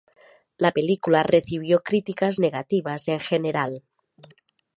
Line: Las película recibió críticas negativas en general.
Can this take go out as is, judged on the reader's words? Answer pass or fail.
fail